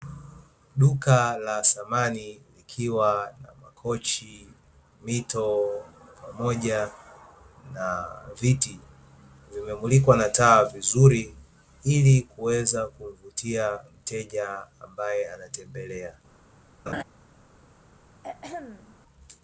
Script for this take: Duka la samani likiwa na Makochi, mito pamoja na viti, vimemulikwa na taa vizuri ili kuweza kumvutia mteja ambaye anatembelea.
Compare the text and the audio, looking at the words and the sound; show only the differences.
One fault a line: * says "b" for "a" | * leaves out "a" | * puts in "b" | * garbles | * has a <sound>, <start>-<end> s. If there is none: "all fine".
* has a laugh, 16.9-17.0 s
* has a throat clearing, 18.2-19.0 s